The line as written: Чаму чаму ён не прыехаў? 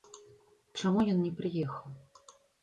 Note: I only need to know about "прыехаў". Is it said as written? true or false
true